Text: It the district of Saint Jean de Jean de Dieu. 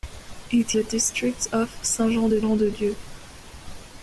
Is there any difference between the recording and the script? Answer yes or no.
no